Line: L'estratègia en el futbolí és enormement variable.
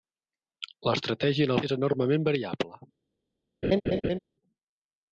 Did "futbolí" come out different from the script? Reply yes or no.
yes